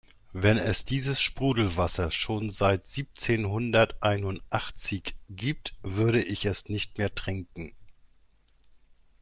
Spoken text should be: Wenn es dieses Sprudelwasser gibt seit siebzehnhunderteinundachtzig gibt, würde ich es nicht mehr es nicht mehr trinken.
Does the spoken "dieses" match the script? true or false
true